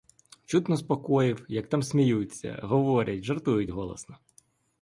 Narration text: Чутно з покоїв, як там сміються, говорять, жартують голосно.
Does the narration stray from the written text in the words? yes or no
no